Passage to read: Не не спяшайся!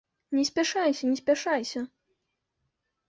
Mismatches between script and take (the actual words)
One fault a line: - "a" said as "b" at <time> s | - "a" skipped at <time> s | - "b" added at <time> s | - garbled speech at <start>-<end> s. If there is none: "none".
- "спяшайся" added at 0.5 s